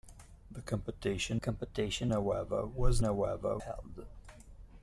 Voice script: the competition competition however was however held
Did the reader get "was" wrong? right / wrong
right